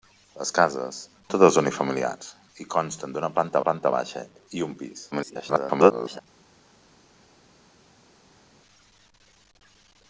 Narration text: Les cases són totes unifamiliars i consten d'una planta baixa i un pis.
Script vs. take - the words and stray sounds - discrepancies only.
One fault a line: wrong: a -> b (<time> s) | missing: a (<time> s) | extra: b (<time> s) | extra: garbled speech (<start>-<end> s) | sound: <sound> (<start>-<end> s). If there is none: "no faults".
missing: són (0.9 s)
extra: planta (3.7 s)
extra: garbled speech (5.1-6.2 s)